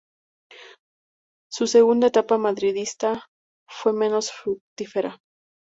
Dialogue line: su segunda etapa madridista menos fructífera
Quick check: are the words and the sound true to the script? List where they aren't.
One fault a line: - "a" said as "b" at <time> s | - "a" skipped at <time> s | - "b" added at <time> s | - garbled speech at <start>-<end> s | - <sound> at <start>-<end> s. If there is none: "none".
- "fue" added at 3.7 s